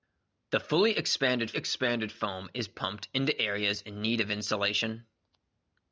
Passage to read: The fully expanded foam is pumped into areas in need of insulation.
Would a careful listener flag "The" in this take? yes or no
no